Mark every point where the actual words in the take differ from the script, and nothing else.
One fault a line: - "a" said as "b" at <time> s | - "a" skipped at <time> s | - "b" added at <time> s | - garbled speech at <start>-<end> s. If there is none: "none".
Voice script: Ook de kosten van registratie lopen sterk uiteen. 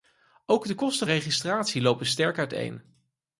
- "van" skipped at 1.1 s